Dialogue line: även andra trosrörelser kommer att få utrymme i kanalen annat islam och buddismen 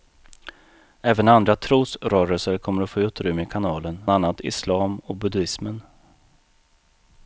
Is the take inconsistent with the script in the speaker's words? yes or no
no